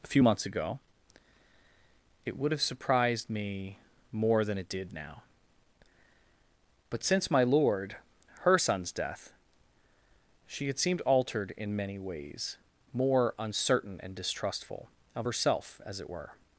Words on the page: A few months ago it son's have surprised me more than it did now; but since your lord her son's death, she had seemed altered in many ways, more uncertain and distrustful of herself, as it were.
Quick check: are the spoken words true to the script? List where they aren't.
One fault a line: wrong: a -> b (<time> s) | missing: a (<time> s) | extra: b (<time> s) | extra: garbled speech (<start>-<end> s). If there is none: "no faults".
wrong: son's -> would (2.4 s)
wrong: your -> my (7.3 s)